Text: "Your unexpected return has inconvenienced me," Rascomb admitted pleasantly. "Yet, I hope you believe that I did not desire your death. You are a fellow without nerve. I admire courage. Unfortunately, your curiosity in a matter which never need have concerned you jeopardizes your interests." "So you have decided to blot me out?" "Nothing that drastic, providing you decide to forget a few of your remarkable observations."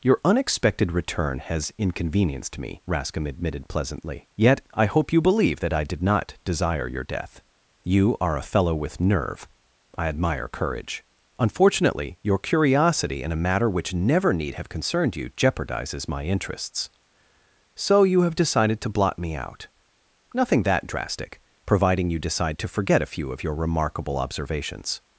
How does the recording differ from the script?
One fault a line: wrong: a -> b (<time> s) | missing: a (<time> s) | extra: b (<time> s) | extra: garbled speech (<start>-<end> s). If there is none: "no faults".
wrong: without -> with (8.7 s)
wrong: your -> my (16.1 s)